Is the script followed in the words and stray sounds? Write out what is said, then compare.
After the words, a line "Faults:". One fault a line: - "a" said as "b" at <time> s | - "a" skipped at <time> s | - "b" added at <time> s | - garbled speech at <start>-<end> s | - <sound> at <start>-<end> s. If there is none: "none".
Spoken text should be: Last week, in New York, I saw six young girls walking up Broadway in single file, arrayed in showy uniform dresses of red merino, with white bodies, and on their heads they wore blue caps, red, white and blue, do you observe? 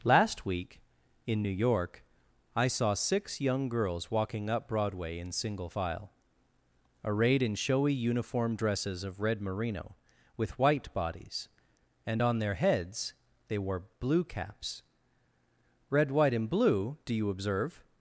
Last week, in New York, I saw six young girls walking up Broadway in single file, arrayed in showy uniform dresses of red merino, with white bodies, and on their heads they wore blue caps, red, white and blue, do you observe?
Faults:
none